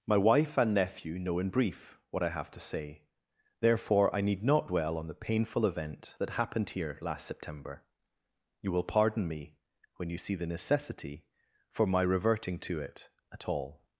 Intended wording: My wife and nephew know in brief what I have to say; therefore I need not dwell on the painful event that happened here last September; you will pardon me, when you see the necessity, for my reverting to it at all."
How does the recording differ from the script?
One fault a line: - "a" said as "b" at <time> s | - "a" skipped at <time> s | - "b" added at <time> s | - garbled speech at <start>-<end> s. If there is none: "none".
none